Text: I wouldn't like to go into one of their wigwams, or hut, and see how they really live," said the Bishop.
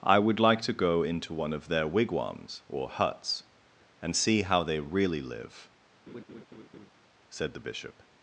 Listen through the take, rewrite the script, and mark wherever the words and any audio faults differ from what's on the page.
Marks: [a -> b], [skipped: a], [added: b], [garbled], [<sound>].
I [wouldn't -> would] like to go into one of their wigwams, or [hut, -> huts] and see how they really live," [laugh] said the Bishop.